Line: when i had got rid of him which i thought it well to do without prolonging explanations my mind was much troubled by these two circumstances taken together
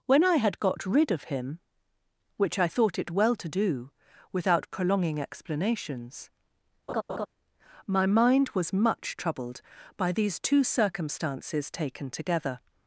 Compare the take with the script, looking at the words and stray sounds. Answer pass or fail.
fail